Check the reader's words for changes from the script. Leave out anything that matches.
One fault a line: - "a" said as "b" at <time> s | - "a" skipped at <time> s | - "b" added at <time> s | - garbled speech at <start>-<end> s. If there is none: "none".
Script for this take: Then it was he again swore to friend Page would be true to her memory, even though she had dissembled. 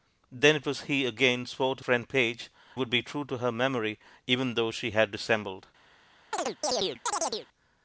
none